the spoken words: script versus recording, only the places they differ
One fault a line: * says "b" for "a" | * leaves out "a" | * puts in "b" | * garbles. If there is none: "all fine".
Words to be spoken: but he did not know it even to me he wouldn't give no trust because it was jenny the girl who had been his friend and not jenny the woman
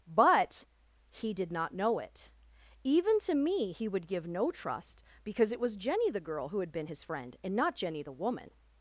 * says "would" for "wouldn't"